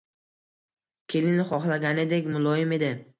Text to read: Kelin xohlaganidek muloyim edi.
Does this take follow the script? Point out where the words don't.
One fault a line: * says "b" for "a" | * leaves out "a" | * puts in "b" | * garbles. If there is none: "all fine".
all fine